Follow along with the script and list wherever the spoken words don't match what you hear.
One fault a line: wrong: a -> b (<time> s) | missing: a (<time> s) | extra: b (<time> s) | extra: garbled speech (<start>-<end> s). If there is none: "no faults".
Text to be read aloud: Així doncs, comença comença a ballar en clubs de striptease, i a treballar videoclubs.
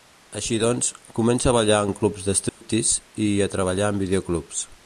missing: comença (1.5 s)
extra: en (3.9 s)